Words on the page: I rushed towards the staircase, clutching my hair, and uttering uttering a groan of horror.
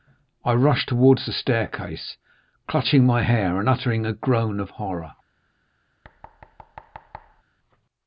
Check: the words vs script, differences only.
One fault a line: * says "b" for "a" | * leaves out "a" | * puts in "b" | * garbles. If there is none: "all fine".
* leaves out "uttering"